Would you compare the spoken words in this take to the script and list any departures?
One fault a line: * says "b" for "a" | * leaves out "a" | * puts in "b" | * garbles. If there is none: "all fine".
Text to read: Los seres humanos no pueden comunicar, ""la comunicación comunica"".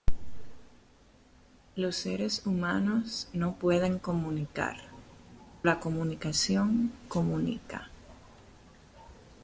all fine